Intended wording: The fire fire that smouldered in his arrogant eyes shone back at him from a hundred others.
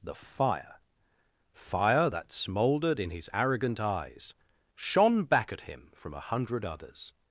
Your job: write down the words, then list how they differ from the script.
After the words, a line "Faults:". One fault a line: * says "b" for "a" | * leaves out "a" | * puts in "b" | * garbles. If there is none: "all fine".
The fire fire that smouldered in his arrogant eyes shone back at him from a hundred others.
Faults:
all fine